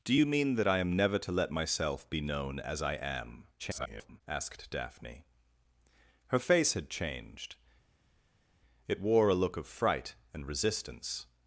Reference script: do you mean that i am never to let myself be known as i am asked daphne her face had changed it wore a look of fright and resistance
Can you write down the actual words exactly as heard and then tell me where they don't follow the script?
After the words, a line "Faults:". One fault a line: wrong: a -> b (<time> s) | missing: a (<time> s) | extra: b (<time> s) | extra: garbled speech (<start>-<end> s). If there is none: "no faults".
do you mean that i am never to let myself be known as i am [garbled] asked daphne her face had changed it wore a look of fright and resistance
Faults:
extra: garbled speech (3.6-4.2 s)